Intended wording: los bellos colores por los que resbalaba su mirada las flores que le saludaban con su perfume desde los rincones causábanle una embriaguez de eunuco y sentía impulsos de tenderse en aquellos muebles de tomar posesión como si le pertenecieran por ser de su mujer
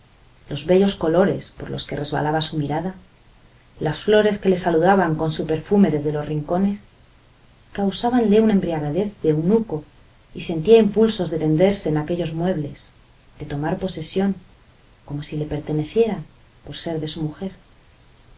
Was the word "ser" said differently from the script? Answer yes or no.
no